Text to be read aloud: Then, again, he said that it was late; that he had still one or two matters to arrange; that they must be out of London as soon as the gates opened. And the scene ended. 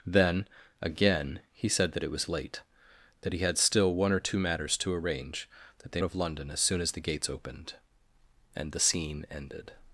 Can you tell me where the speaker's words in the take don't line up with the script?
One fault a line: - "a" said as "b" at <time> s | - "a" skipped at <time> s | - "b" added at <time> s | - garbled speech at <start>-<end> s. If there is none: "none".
- "must be out" skipped at 6.0 s